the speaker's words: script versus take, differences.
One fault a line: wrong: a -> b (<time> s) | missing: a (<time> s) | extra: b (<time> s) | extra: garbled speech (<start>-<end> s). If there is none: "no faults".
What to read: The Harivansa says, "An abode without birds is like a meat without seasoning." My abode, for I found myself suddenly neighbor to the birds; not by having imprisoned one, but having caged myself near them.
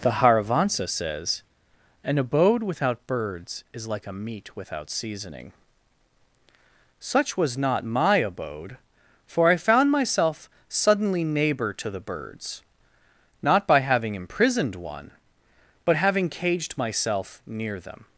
extra: Such was not (7.0 s)